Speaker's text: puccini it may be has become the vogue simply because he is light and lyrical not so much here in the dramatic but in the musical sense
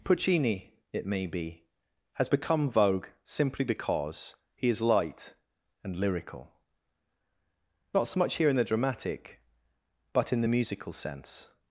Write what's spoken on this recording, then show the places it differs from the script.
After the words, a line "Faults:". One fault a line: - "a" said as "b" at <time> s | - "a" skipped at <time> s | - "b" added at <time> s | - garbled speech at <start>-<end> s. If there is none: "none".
puccini it may be has become vogue simply because he is light and lyrical not so much here in the dramatic but in the musical sense
Faults:
- "the" skipped at 2.7 s